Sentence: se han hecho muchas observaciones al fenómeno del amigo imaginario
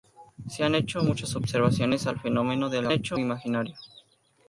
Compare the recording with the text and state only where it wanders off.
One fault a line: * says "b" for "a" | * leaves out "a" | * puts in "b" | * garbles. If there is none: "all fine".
* says "hecho" for "amigo"